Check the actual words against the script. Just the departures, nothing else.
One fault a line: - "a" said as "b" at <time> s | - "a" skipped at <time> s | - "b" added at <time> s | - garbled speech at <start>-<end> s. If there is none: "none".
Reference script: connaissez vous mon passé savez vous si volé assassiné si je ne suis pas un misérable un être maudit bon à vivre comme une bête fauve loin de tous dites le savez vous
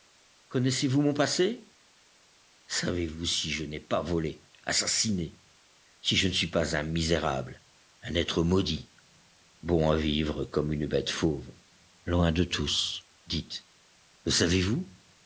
- "je n'ai pas" added at 3.5 s